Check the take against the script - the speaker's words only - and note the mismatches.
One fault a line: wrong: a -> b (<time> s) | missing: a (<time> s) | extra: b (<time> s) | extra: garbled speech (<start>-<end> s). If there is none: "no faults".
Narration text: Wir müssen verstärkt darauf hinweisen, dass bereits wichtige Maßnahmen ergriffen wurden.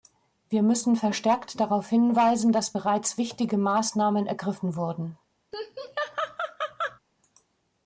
no faults